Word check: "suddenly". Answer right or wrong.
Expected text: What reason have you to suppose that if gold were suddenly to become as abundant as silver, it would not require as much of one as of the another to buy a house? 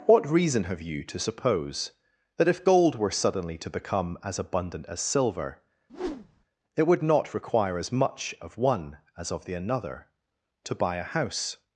right